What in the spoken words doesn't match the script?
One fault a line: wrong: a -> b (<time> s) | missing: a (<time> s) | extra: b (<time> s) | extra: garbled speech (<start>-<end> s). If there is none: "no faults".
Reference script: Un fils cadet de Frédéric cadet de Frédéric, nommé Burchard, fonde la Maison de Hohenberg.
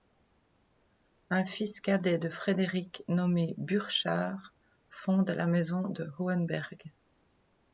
missing: cadet de Frédéric (3.0 s)